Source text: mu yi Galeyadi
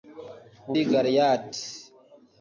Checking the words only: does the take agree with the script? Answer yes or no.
yes